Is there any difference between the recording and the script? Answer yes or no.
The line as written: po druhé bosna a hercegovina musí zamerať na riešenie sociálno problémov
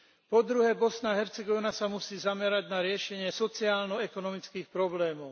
yes